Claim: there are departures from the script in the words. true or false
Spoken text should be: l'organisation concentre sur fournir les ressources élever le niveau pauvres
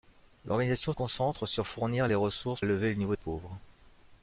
false